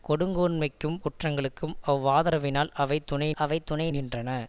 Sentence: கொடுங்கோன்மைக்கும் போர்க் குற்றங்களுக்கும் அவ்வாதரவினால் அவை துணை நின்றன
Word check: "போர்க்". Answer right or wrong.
wrong